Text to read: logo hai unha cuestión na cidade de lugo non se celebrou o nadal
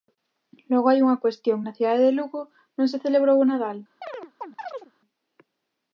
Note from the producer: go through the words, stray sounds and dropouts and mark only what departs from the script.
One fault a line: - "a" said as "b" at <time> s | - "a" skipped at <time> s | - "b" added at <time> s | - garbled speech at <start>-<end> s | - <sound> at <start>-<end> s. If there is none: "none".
- chirp at 4.0-4.9 s